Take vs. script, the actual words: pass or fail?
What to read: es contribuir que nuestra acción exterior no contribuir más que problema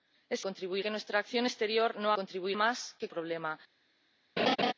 pass